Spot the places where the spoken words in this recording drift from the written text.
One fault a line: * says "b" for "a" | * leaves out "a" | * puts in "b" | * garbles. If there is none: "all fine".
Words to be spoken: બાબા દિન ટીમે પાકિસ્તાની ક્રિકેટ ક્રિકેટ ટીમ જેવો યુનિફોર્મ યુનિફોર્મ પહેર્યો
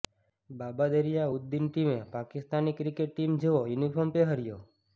* puts in "દરિયા ઉદ"
* leaves out "ક્રિકેટ"
* leaves out "યુનિફોર્મ"